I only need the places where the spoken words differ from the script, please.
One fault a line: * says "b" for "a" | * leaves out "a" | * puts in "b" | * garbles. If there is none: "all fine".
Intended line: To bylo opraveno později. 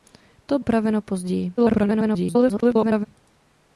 * leaves out "bylo"
* garbles